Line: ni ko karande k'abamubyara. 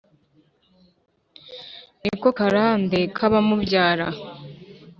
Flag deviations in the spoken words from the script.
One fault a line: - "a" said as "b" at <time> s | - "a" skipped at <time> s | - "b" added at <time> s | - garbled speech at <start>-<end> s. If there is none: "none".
none